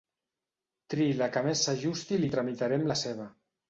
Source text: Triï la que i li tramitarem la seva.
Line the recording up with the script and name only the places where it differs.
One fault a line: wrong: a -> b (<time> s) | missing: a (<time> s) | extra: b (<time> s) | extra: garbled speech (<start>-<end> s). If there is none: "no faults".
extra: més s'ajusti (1.5 s)